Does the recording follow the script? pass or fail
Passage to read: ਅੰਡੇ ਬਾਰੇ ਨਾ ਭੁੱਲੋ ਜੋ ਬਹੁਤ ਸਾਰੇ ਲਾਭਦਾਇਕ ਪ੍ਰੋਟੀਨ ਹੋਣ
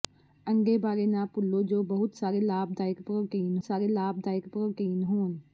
fail